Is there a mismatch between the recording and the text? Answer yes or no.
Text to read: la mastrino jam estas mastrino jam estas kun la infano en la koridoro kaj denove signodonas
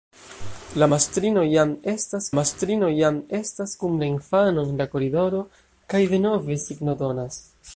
no